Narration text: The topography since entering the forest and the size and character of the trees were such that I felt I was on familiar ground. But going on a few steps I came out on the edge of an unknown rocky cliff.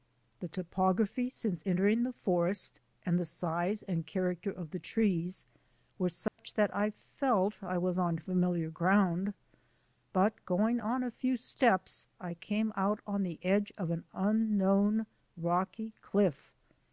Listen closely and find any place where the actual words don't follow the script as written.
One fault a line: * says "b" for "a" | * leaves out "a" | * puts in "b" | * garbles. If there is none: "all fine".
all fine